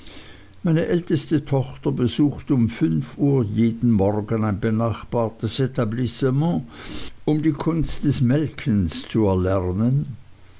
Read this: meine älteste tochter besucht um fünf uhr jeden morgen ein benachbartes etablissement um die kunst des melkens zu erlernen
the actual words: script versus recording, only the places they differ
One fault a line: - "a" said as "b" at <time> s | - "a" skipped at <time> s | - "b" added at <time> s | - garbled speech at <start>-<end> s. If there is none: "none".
none